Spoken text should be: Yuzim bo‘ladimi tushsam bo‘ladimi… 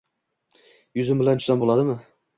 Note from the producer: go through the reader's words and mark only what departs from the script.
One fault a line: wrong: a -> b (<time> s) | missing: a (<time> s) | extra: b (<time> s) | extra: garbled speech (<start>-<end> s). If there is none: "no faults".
wrong: bo‘ladimi -> bilan (1.2 s)